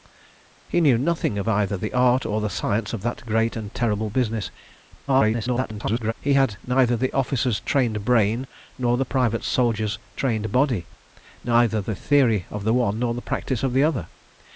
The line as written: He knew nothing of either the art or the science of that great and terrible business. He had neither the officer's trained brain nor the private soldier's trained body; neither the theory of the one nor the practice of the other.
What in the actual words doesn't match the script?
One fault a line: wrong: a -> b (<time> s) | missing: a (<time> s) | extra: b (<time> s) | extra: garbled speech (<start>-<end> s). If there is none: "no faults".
extra: garbled speech (5.1-6.1 s)